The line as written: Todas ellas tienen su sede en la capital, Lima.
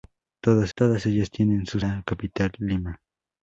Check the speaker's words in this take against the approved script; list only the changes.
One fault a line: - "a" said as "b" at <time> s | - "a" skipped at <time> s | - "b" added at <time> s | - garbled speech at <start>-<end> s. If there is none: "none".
- "todas" added at 0.8 s
- "sede en" skipped at 1.8 s